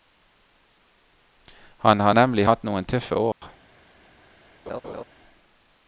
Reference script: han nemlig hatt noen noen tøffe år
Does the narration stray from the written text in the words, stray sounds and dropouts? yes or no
yes